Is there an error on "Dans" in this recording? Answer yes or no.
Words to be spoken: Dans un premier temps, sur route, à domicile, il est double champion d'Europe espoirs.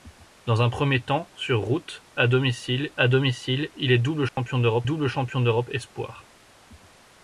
no